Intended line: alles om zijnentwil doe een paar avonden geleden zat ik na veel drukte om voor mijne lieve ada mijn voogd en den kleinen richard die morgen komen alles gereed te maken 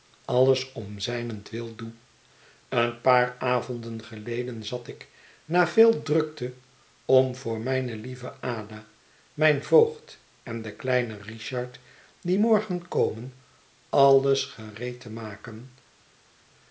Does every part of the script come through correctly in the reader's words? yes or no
yes